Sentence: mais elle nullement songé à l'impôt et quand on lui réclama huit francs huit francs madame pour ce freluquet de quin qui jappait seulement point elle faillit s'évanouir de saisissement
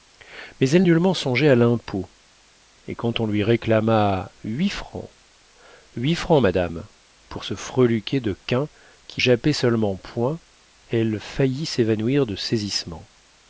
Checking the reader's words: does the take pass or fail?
pass